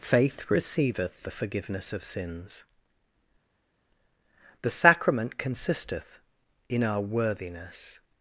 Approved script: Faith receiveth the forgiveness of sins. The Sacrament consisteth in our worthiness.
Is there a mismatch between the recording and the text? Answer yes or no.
no